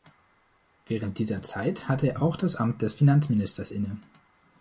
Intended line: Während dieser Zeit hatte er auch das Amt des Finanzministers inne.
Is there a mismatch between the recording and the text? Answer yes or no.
no